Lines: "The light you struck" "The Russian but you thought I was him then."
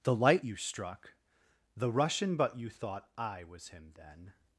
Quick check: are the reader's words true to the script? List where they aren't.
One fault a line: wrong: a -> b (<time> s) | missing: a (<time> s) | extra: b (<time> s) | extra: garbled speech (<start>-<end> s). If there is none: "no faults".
no faults